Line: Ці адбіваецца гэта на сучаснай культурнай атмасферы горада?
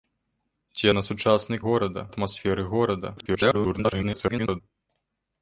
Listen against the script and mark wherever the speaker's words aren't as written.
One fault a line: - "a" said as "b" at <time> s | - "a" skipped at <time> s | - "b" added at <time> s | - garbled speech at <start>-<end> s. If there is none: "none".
- "адбіваецца гэта" skipped at 0.8 s
- "культурнай" said as "горада" at 1.7 s
- garbled speech at 3.2-4.6 s